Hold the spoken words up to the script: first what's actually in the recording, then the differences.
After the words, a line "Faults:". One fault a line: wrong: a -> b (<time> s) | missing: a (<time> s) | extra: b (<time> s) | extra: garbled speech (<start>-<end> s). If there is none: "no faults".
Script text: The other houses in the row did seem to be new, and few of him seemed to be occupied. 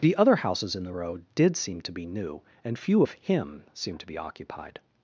The other houses in the row did seem to be new, and few of him seemed to be occupied.
Faults:
no faults